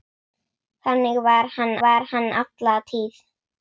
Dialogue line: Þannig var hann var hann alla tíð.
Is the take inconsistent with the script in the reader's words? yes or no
no